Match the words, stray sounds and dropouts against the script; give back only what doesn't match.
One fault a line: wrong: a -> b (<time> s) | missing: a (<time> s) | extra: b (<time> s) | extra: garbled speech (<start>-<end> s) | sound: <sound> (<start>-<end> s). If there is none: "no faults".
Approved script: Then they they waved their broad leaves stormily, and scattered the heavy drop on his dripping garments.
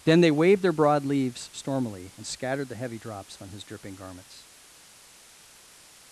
missing: they (0.3 s)
wrong: drop -> drops (3.0 s)